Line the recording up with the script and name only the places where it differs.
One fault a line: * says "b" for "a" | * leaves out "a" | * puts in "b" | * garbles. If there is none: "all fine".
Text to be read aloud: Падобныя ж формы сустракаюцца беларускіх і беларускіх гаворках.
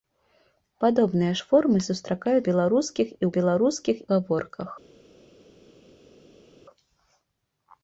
all fine